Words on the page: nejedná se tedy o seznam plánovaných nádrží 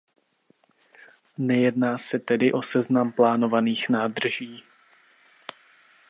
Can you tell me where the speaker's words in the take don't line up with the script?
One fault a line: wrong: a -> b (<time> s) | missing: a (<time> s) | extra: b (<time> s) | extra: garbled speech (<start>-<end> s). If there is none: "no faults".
no faults